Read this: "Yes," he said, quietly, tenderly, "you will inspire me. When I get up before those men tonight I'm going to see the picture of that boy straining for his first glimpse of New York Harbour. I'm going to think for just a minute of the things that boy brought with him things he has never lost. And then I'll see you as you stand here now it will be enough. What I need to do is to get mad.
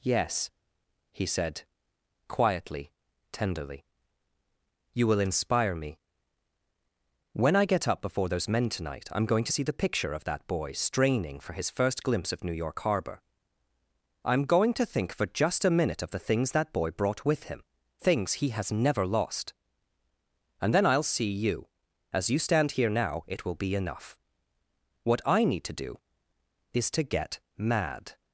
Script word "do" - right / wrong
right